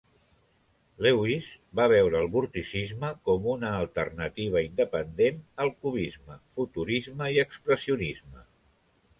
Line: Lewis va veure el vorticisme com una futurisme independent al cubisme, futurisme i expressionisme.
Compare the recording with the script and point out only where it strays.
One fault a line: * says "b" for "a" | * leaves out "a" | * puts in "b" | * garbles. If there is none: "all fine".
* says "alternativa" for "futurisme"